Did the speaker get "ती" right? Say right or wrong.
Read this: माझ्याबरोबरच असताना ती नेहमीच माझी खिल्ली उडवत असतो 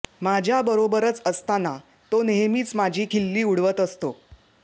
wrong